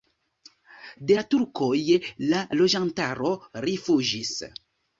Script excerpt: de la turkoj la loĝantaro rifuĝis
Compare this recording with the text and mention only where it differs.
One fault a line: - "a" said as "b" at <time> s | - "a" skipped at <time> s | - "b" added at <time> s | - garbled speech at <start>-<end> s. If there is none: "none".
none